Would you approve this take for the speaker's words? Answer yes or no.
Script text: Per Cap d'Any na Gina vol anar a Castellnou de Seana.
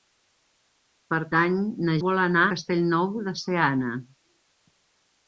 no